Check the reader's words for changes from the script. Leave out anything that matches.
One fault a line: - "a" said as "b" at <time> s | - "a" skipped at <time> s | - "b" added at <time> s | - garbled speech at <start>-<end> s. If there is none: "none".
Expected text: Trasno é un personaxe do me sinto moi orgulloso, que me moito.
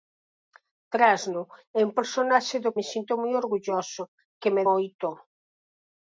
none